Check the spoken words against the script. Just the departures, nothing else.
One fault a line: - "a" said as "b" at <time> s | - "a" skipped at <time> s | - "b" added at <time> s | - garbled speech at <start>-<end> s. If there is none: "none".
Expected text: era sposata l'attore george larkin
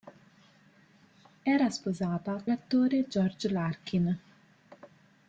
none